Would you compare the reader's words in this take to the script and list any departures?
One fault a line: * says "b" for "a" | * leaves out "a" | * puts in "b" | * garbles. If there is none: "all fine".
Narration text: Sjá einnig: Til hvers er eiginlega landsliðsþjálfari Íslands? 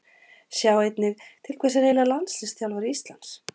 all fine